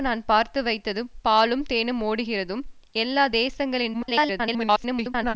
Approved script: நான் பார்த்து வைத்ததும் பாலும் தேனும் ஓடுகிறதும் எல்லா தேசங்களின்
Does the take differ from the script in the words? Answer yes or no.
yes